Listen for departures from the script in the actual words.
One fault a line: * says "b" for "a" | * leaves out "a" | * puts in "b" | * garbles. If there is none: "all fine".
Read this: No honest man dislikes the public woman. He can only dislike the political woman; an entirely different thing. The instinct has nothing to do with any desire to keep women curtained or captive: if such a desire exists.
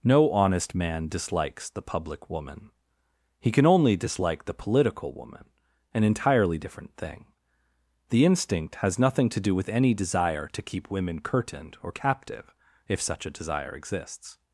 all fine